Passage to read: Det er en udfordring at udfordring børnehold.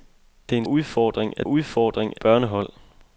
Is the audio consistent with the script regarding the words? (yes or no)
yes